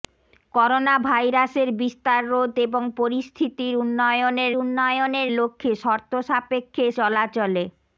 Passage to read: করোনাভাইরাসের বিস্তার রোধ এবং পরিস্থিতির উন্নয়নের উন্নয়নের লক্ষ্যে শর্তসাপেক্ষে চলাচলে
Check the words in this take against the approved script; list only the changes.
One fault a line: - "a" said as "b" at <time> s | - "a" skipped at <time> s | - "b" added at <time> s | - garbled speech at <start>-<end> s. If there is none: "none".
none